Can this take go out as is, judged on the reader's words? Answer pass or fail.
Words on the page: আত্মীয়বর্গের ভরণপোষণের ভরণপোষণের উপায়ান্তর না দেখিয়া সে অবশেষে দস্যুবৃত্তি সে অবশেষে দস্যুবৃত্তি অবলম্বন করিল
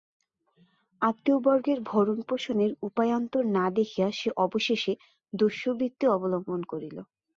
fail